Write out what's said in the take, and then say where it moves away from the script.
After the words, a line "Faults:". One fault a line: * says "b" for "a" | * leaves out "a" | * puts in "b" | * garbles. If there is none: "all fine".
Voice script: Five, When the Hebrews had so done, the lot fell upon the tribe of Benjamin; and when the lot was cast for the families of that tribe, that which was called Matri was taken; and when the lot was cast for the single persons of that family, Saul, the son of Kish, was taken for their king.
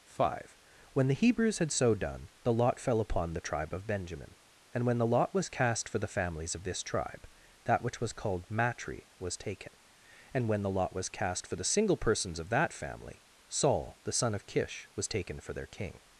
Five, When the Hebrews had so done, the lot fell upon the tribe of Benjamin; and when the lot was cast for the families of this tribe, that which was called Matri was taken; and when the lot was cast for the single persons of that family, Saul, the son of Kish, was taken for their king.
Faults:
* says "this" for "that"